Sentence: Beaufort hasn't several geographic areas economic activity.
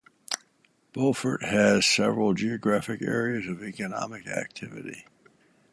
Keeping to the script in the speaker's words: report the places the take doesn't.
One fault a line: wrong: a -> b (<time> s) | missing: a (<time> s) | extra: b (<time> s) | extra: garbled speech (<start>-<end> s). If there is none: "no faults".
wrong: hasn't -> has (1.4 s)
extra: of (3.5 s)